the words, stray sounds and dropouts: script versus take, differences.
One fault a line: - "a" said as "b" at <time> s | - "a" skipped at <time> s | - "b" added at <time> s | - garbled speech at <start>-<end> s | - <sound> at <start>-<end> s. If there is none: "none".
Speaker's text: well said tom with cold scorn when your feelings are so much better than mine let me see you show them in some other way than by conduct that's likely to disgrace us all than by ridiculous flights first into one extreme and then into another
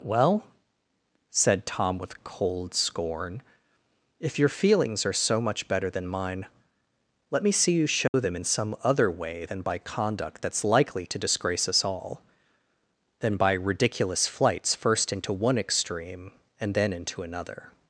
- "when" said as "if" at 4.2 s
- dropout at 8.1-8.1 s